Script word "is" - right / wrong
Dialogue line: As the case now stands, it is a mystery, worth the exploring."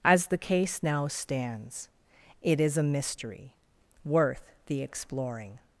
right